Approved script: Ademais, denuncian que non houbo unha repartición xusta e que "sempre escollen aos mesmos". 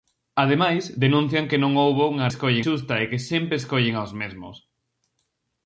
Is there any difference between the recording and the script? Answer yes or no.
yes